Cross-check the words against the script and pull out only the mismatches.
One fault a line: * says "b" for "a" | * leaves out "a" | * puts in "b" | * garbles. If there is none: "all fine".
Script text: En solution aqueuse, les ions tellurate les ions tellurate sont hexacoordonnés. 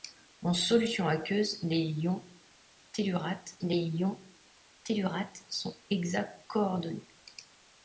all fine